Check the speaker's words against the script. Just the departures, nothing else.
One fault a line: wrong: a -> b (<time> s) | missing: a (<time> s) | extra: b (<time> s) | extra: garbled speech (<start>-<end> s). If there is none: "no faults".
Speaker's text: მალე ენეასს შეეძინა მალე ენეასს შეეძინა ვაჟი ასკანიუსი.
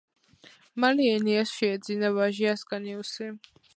missing: მალე ენეასს შეეძინა (2.1 s)